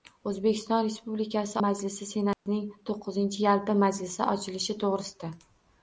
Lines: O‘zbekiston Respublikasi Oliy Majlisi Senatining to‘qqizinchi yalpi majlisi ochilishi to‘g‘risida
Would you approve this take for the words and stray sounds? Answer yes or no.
no